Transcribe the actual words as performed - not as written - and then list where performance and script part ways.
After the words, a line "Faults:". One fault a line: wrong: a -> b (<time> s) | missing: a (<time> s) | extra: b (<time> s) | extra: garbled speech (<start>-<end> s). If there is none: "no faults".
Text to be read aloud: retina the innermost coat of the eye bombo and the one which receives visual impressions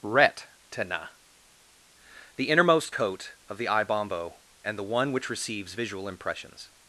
retina the innermost coat of the eye bombo and the one which receives visual impressions
Faults:
no faults